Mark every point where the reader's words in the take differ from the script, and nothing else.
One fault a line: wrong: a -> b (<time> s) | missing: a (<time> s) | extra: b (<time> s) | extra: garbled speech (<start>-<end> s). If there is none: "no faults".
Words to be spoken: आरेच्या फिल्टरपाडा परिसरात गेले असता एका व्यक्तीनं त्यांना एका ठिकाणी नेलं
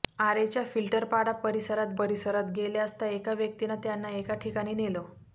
extra: परिसरात (2.0 s)